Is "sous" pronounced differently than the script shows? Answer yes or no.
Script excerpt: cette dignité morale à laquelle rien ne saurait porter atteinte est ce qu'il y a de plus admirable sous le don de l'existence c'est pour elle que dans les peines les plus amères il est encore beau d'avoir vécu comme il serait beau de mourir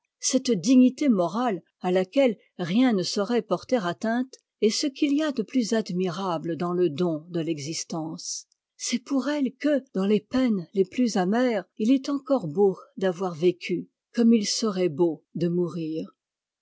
yes